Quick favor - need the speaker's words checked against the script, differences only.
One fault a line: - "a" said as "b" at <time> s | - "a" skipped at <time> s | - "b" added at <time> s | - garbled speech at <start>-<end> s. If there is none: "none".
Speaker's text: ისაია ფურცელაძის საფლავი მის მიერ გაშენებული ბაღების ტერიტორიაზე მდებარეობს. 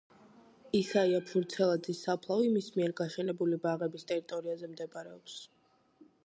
none